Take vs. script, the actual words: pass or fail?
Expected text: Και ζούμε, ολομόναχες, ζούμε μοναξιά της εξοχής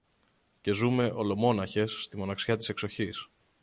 fail